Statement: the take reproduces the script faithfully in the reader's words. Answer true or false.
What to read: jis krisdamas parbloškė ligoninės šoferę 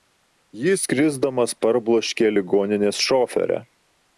true